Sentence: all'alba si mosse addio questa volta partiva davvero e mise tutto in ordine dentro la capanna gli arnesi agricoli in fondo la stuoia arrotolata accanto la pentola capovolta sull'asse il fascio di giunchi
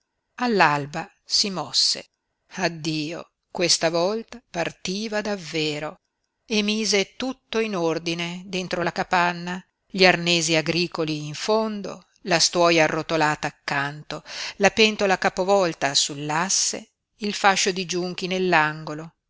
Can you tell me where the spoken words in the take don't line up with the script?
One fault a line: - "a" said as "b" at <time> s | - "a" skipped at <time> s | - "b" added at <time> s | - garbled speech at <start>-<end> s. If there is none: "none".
none